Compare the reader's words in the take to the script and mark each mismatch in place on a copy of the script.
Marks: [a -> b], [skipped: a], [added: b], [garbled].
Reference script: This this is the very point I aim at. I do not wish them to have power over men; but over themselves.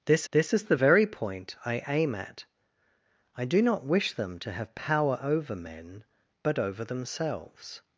This this is the very point I aim at. I do not wish them to have power over men; but over themselves.